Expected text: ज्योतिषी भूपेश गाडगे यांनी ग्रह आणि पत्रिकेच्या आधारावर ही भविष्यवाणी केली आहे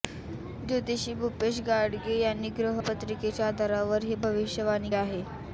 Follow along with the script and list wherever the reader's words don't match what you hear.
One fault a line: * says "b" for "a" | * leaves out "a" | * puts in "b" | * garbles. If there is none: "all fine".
* leaves out "आणि"
* leaves out "केली"